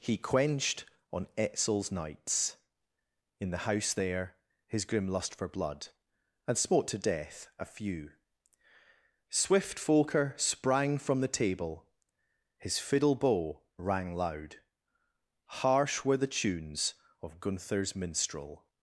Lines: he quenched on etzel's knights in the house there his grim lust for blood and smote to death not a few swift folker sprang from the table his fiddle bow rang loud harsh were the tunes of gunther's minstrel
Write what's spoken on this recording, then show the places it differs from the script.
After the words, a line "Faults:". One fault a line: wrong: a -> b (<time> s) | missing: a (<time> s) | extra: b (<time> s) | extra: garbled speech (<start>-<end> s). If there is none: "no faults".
he quenched on etzel's knights in the house there his grim lust for blood and smote to death a few swift folker sprang from the table his fiddle bow rang loud harsh were the tunes of gunther's minstrel
Faults:
missing: not (7.5 s)